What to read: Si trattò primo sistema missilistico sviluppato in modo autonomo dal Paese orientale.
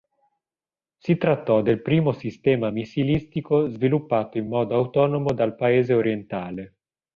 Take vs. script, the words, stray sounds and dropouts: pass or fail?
fail